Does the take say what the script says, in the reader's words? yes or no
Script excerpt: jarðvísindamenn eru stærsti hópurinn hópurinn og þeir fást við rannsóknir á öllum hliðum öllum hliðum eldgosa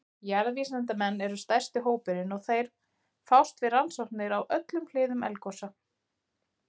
no